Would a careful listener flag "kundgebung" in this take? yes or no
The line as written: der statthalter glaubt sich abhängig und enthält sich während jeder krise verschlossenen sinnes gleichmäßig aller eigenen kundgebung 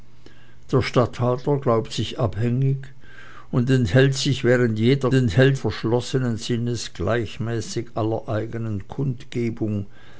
no